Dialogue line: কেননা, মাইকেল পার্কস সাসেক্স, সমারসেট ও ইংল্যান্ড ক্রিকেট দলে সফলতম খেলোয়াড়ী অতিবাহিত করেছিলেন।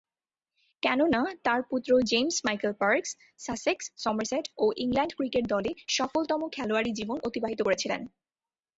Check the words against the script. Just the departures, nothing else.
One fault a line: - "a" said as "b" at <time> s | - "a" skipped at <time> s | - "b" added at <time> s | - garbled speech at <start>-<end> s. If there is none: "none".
- "তার পুত্র জেমস" added at 1.4 s
- "জীবন" added at 6.9 s